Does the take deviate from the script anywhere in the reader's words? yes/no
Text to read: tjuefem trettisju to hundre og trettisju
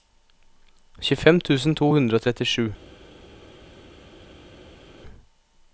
yes